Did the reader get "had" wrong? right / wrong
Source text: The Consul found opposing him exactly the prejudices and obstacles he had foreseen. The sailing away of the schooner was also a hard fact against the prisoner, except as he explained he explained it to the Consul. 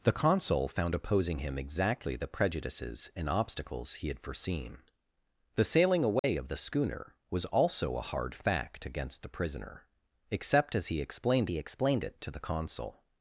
right